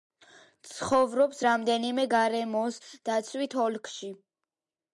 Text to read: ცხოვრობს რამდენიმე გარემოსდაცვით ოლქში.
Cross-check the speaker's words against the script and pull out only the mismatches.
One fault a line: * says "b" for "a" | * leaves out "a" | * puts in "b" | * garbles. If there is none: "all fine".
all fine